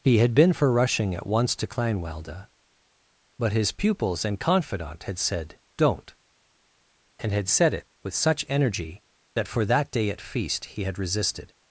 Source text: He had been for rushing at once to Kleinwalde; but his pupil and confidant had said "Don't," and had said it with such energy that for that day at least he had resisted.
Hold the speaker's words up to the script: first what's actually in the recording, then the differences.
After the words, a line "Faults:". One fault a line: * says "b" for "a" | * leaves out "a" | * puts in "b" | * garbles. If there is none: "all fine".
He had been for rushing at once to Kleinwalde; but his pupils and confidant had said "Don't," and had said it with such energy that for that day at feast he had resisted.
Faults:
* says "pupils" for "pupil"
* says "feast" for "least"